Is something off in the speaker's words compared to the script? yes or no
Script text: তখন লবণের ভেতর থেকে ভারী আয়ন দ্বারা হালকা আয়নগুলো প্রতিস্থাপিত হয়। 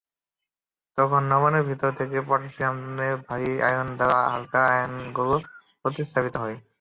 yes